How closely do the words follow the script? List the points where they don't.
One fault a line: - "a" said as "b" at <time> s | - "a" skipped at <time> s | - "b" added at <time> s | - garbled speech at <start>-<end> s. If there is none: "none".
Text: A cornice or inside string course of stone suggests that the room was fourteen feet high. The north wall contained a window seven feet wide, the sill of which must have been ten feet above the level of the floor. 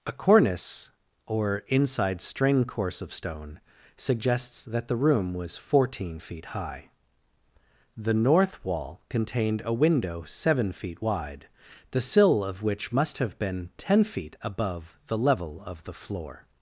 none